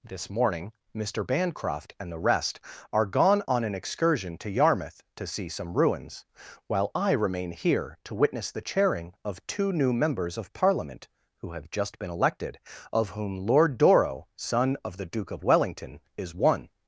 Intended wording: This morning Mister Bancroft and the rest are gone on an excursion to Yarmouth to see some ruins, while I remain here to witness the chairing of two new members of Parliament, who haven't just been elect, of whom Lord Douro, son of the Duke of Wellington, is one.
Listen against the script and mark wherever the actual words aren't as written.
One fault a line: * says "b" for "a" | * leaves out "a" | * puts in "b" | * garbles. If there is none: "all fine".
* says "have" for "haven't"
* says "elected" for "elect"